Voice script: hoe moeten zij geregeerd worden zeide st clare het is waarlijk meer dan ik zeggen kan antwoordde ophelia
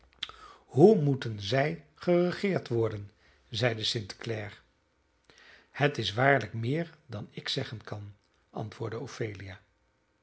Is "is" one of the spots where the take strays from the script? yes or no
no